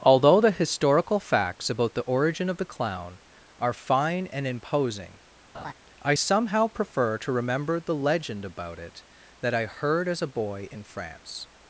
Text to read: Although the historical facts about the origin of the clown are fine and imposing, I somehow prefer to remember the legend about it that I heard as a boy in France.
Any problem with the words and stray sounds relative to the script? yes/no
yes